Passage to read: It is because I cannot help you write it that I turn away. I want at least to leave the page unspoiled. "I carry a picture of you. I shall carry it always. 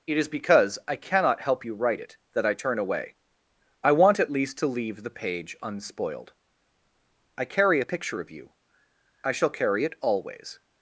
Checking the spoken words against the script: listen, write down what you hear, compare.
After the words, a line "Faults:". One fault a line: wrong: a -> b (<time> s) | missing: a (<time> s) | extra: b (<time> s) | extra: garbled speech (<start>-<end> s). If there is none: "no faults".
It is because I cannot help you write it that I turn away. I want at least to leave the page unspoiled. "I carry a picture of you. I shall carry it always.
Faults:
no faults